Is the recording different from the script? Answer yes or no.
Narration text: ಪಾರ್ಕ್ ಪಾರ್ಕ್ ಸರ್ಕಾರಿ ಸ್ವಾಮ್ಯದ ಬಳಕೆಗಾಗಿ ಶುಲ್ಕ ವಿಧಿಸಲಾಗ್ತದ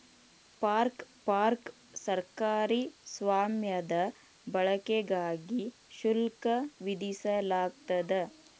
no